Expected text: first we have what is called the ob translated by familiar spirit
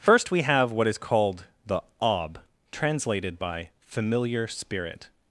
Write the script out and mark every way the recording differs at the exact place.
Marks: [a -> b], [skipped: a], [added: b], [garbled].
first we have what is called the ob translated by familiar spirit